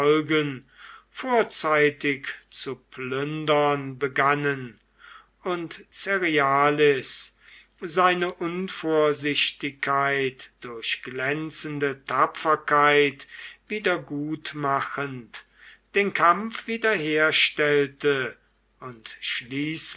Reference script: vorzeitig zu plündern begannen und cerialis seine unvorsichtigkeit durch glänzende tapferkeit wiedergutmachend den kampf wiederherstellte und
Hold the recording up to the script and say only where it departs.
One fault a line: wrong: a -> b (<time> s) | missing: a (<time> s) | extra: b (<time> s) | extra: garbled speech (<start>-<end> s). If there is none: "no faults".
no faults